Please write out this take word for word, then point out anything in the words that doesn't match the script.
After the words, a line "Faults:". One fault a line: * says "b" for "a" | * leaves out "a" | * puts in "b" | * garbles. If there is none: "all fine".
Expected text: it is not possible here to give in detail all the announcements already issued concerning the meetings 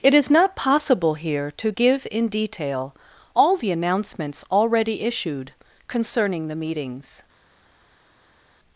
it is not possible here to give in detail all the announcements already issued concerning the meetings
Faults:
all fine